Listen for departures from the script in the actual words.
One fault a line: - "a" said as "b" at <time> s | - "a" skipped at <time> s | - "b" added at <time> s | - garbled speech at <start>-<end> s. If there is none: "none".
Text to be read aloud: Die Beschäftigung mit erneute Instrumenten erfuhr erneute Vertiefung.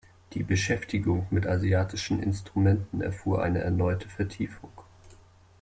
- "erneute" said as "asiatischen" at 1.4 s
- "eine" added at 3.4 s